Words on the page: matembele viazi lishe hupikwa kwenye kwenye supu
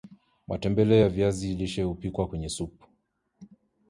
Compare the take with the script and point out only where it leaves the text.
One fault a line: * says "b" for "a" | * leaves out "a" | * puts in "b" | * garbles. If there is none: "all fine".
* puts in "ya"
* leaves out "kwenye"